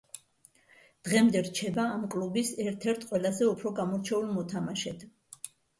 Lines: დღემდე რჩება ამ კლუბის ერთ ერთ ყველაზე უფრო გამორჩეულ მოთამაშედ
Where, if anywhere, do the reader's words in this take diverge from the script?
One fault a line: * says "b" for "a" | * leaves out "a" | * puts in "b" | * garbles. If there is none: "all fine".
all fine